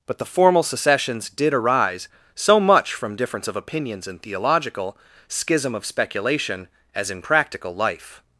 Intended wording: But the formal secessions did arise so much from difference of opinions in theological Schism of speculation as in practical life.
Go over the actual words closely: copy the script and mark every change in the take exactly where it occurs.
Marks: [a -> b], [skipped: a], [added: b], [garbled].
But the formal secessions did arise so much from difference of opinions in theological Schism of speculation as in practical life.